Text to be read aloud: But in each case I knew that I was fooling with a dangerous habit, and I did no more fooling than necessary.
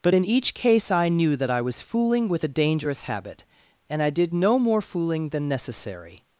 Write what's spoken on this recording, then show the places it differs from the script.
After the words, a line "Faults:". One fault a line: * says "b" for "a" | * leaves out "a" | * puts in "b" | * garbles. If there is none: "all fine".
But in each case I knew that I was fooling with a dangerous habit, and I did no more fooling than necessary.
Faults:
all fine